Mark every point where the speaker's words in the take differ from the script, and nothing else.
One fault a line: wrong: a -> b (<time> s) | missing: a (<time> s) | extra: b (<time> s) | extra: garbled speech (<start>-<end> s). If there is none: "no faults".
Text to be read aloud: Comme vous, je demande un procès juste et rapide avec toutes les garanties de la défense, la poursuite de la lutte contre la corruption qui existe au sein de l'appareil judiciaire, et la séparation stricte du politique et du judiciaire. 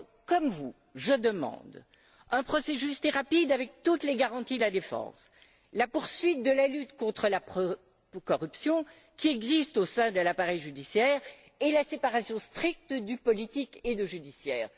no faults